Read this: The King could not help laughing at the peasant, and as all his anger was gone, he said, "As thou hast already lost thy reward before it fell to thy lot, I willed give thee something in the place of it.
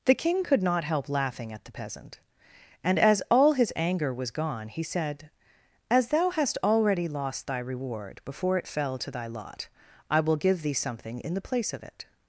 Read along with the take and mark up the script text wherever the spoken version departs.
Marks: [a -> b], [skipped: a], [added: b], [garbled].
The King could not help laughing at the peasant, and as all his anger was gone, he said, "As thou hast already lost thy reward before it fell to thy lot, I [willed -> will] give thee something in the place of it.